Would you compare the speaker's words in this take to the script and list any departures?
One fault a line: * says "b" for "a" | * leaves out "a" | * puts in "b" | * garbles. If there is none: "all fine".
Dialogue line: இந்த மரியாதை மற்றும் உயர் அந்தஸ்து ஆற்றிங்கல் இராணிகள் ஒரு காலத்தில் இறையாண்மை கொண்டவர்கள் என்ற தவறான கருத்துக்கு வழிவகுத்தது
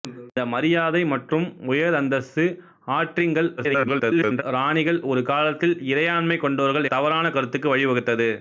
* garbles
* leaves out "என்ற"